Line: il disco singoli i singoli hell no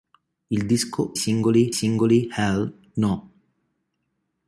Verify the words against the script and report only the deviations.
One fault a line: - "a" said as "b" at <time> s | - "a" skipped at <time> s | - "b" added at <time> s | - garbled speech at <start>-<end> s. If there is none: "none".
none